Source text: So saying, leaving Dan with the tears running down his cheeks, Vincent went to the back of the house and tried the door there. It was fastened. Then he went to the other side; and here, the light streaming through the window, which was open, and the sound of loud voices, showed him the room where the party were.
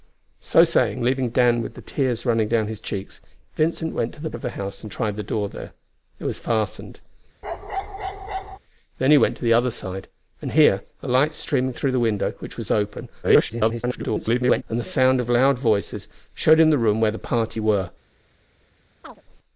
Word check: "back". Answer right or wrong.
wrong